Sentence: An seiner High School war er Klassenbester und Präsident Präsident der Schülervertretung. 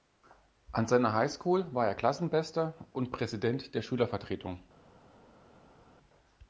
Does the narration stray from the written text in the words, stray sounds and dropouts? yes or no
yes